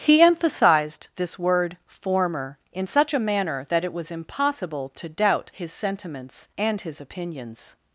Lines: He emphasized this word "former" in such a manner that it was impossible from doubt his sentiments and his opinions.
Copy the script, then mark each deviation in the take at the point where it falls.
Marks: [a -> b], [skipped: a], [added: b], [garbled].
He emphasized this word "former" in such a manner that it was impossible [from -> to] doubt his sentiments and his opinions.